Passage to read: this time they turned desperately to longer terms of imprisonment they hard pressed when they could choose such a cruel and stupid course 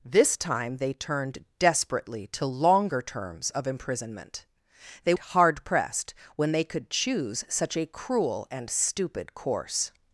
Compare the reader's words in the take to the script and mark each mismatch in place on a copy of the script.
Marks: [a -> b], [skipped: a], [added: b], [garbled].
this time they turned desperately to longer terms of imprisonment they hard pressed when they could choose such a cruel and stupid course